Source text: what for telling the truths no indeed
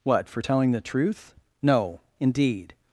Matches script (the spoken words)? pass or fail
fail